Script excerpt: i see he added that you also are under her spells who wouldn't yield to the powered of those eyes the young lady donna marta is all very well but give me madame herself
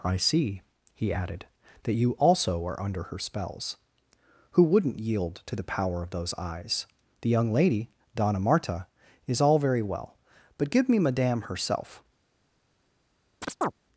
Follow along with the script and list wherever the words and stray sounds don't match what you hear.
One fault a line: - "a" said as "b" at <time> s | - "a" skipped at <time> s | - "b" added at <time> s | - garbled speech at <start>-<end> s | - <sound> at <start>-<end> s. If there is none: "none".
- "powered" said as "power" at 5.7 s
- chirp at 13.4-13.7 s